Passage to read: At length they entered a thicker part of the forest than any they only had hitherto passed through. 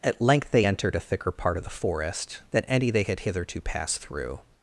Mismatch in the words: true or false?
true